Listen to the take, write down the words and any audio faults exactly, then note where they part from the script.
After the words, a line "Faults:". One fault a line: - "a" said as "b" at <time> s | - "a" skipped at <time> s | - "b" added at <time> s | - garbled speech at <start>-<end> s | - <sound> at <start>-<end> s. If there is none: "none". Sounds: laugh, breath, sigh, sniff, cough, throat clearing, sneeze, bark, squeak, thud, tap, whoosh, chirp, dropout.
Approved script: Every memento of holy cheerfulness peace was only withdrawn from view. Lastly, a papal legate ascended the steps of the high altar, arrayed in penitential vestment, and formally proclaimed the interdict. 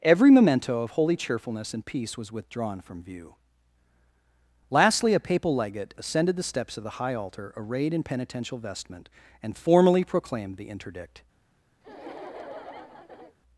Every memento of holy cheerfulness and peace was withdrawn from view. Lastly, a papal legate ascended the steps of the high altar, arrayed in penitential vestment, and formally proclaimed the interdict.
Faults:
- "and" added at 1.8 s
- "only" skipped at 2.3 s
- laugh at 11.8-13.4 s